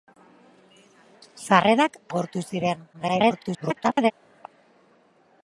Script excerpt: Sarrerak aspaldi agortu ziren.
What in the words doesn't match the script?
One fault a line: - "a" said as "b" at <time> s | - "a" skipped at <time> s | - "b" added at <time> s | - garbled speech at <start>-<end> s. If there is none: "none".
- "aspaldi" skipped at 2.0 s
- garbled speech at 2.9-4.1 s